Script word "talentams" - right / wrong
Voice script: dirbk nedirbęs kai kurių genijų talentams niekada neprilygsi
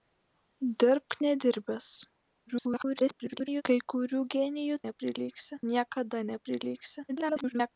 wrong